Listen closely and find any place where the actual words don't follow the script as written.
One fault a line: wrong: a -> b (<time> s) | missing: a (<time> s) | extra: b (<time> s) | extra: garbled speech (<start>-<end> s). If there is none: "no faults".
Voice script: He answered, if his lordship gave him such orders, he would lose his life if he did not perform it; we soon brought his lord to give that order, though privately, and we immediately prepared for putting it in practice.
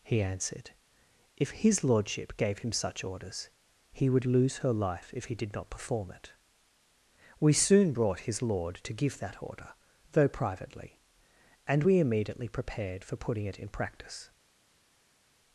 wrong: his -> her (4.6 s)